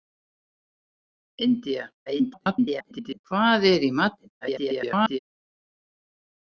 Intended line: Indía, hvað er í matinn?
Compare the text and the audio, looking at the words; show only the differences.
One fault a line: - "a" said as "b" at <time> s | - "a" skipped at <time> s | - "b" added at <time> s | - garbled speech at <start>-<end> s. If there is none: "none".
- garbled speech at 2.1-3.2 s
- garbled speech at 4.4-5.2 s